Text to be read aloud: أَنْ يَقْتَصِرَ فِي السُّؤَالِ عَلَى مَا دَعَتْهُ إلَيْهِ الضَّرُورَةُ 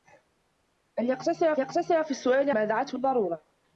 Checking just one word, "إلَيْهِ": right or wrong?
wrong